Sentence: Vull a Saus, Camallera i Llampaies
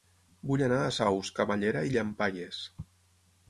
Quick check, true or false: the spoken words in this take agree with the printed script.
false